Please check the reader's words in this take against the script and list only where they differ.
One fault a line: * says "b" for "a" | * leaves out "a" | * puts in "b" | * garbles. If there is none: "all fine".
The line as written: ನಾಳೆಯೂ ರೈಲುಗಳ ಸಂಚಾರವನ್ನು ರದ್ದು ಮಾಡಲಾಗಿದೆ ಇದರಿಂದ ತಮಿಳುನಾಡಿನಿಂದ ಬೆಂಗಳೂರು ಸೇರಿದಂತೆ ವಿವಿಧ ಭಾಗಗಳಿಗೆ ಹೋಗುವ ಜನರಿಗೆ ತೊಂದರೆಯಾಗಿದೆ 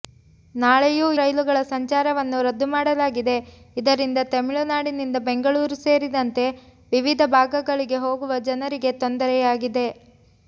all fine